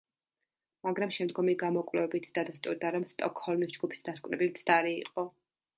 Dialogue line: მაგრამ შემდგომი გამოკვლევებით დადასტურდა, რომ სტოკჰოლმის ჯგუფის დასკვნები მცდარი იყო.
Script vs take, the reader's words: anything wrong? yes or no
no